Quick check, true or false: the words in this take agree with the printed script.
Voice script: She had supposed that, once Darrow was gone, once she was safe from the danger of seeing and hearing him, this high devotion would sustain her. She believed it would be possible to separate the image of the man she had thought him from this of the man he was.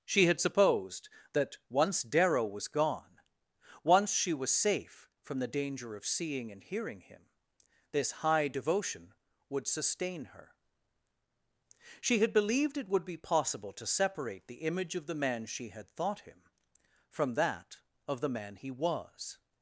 false